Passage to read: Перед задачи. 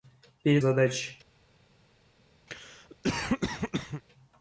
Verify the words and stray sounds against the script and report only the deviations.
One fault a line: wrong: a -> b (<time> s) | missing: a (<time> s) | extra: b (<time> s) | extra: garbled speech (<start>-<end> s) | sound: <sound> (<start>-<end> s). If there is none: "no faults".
sound: cough (2.5-4.0 s)